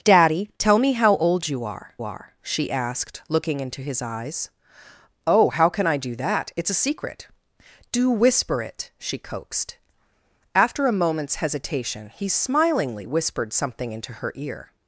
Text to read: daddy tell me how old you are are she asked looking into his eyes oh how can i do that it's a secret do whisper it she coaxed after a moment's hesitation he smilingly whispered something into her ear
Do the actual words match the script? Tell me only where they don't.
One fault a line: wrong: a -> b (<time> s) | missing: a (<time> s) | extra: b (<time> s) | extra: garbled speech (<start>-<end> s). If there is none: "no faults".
no faults